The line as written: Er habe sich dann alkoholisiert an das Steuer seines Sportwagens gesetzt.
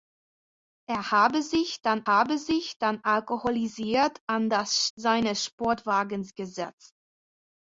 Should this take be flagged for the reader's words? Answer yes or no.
yes